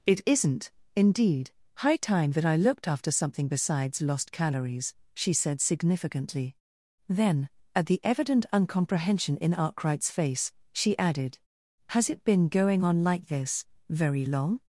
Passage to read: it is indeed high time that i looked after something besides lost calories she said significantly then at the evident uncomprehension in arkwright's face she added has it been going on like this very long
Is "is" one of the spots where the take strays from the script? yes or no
yes